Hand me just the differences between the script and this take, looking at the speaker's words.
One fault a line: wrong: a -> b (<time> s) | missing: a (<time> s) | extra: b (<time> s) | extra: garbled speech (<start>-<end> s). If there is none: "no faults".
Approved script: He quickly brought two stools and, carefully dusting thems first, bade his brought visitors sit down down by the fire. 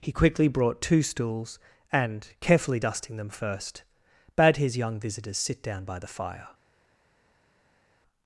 wrong: thems -> them (3.2 s)
wrong: brought -> young (4.8 s)
missing: down (5.8 s)